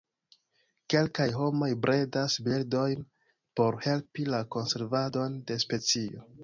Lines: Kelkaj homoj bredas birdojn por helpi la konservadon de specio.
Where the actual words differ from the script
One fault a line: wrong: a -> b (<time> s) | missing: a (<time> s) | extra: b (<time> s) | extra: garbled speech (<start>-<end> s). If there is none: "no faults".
no faults